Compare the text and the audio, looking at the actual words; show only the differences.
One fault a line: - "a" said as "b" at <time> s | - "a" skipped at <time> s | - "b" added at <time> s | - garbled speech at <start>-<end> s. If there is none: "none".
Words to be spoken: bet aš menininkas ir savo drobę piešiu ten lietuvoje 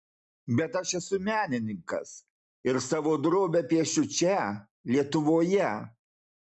- "esu" added at 1.0 s
- "ten" said as "čia" at 4.2 s